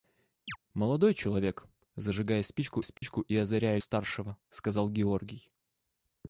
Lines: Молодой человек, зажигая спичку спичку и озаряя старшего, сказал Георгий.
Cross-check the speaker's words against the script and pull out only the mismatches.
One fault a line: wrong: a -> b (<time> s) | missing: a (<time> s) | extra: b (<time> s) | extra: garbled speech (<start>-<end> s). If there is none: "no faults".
no faults